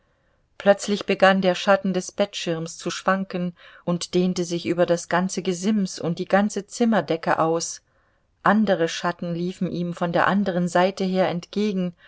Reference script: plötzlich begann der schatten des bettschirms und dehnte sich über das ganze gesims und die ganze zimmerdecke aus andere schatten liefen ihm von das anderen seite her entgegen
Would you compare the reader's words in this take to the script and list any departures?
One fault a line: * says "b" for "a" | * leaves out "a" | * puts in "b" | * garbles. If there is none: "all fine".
* puts in "zu schwanken"
* says "der" for "das"